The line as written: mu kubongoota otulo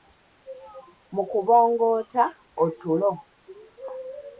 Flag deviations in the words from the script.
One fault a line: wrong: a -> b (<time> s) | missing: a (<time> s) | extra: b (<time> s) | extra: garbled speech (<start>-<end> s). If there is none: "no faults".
no faults